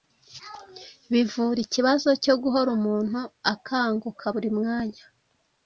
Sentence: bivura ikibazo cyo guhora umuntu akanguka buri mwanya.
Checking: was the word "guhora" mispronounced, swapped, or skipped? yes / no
no